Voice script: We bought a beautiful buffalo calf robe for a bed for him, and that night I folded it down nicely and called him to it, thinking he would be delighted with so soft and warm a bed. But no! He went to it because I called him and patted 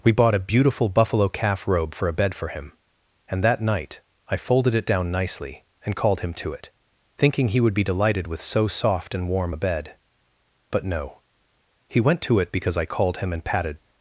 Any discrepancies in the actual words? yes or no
no